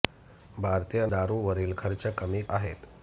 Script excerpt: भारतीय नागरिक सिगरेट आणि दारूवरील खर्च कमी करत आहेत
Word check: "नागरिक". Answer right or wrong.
wrong